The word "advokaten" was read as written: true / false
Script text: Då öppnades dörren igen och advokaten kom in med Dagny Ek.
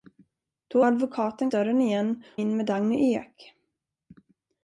false